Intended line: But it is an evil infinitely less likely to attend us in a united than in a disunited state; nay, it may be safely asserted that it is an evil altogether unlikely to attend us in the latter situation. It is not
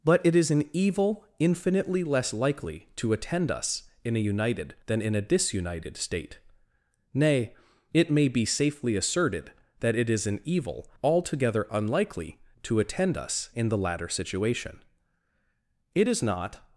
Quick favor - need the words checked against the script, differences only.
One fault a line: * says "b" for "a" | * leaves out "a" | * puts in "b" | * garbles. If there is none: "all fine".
all fine